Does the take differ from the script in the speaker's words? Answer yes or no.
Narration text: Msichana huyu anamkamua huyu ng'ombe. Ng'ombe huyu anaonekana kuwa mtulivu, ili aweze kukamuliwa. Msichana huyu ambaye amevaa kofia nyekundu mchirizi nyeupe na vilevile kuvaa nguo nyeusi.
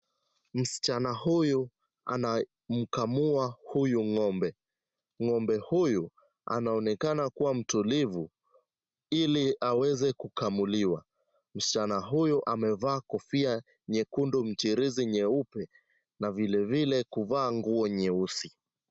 yes